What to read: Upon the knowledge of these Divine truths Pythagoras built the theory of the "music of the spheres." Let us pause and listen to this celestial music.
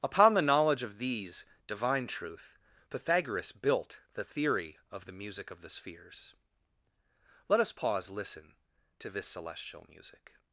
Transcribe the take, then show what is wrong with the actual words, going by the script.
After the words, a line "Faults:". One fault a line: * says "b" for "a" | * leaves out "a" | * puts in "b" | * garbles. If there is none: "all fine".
Upon the knowledge of these Divine truth Pythagoras built the theory of the "music of the spheres." Let us pause listen to this celestial music.
Faults:
* says "truth" for "truths"
* leaves out "and"